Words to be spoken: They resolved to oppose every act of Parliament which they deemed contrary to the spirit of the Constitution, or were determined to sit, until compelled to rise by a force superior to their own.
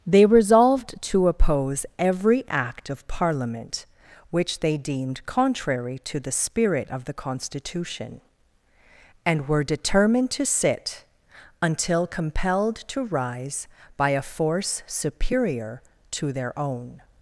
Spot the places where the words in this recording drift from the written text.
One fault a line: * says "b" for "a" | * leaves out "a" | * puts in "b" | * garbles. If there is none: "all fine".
* says "and" for "or"